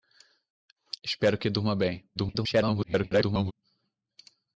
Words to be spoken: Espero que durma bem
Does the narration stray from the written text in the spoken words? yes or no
yes